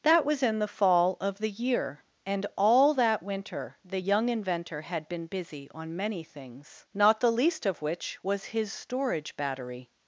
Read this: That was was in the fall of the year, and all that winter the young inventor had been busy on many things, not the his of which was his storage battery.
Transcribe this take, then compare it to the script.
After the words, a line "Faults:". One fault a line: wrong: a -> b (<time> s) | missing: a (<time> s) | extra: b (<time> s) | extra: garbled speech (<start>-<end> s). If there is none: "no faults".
That was in the fall of the year, and all that winter the young inventor had been busy on many things, not the least of which was his storage battery.
Faults:
missing: was (0.4 s)
wrong: his -> least (7.3 s)